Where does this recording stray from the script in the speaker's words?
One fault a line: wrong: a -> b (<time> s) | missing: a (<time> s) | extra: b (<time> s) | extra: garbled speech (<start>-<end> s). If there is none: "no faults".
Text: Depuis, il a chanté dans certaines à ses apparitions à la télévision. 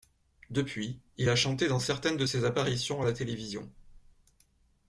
wrong: à -> de (2.1 s)